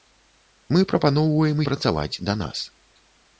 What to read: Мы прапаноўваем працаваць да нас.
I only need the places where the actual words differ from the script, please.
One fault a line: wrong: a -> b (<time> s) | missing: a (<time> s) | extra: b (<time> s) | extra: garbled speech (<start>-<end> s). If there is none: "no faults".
no faults